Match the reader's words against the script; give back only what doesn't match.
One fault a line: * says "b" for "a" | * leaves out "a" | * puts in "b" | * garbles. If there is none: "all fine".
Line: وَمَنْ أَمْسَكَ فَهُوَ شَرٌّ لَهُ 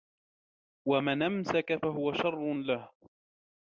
all fine